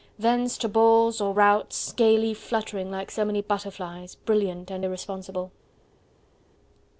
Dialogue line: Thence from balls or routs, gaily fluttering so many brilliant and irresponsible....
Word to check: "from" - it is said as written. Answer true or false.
false